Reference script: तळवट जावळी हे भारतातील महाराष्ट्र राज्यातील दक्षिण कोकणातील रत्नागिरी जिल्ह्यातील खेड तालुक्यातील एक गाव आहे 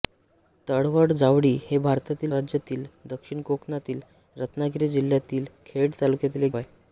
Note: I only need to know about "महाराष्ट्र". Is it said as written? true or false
false